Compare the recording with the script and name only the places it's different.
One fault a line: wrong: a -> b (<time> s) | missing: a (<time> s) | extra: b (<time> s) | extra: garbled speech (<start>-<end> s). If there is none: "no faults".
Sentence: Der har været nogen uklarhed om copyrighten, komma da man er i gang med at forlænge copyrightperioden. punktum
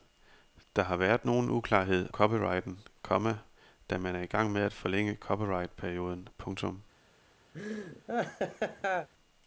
missing: om (2.1 s)